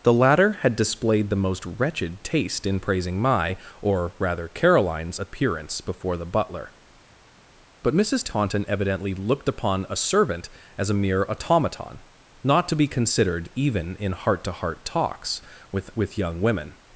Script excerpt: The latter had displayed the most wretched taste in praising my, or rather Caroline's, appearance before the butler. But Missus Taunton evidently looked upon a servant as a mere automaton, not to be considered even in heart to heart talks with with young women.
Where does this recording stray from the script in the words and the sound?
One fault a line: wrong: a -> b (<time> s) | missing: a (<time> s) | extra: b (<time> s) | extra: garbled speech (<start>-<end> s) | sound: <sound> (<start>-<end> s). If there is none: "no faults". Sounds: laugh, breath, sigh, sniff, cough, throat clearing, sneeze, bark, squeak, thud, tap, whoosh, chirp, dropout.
no faults